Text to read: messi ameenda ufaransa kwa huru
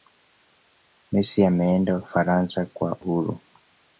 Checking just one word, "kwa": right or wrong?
right